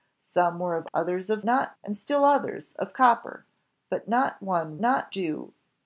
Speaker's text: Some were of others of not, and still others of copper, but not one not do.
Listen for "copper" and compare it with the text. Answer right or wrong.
right